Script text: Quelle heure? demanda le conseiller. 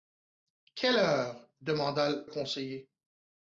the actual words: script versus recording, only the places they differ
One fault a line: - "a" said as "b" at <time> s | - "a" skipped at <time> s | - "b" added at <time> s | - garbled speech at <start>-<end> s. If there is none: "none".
- "le" skipped at 2.1 s